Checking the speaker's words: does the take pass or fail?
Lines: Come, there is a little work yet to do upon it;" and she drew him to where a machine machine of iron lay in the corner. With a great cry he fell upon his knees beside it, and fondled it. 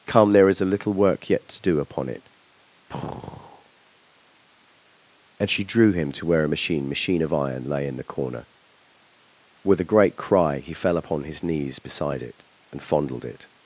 pass